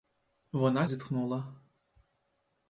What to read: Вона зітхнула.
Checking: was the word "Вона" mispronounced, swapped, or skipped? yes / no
no